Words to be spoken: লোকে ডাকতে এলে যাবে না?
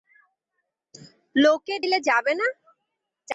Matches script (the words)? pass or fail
fail